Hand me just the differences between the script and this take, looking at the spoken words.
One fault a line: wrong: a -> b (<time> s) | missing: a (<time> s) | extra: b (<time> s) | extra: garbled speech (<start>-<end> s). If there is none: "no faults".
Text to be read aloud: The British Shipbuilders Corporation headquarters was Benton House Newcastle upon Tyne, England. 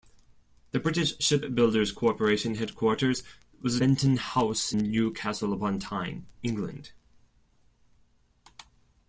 no faults